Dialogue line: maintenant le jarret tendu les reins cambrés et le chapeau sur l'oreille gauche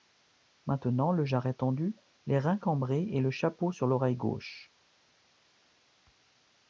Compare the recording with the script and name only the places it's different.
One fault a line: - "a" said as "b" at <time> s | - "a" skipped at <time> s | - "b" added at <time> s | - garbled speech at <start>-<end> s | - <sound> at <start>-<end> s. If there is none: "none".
none